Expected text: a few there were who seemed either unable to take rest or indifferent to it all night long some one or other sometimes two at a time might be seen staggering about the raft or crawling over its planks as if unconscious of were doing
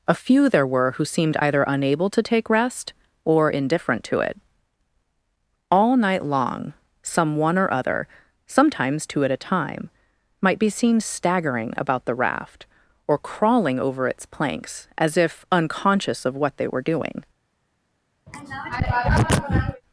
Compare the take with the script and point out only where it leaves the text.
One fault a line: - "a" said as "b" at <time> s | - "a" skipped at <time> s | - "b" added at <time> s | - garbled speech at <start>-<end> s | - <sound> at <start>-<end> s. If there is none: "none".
- "what they" added at 16.4 s
- throat clearing at 18.3-19.8 s